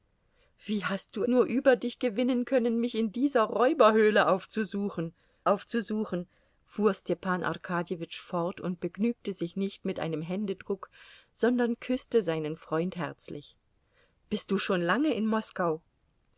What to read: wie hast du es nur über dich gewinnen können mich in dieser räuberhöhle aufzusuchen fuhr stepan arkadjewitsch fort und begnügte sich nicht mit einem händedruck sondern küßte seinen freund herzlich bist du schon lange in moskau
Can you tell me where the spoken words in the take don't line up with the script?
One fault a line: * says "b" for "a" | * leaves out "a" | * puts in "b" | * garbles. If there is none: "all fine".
* leaves out "es"
* puts in "aufzusuchen"